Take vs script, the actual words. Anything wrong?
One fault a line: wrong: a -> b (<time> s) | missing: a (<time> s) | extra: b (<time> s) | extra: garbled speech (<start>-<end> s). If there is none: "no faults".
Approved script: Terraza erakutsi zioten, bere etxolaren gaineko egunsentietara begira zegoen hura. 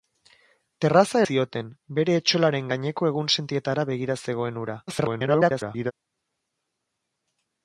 missing: erakutsi (1.2 s)
extra: garbled speech (4.9-5.9 s)